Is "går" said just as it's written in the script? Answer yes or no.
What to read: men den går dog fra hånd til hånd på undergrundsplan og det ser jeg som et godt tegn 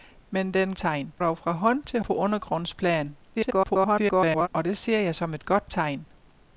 no